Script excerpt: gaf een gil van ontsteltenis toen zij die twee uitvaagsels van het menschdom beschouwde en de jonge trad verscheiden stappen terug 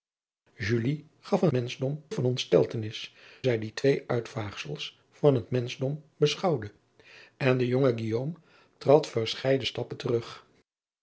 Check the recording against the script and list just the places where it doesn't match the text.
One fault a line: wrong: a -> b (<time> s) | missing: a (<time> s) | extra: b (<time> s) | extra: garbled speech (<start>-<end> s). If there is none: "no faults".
wrong: gil -> menschdom (1.5 s)
missing: toen (3.1 s)